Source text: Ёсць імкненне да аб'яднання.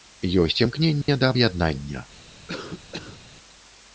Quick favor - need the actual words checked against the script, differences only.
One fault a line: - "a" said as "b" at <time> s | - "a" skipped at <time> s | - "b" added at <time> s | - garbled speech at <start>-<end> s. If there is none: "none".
none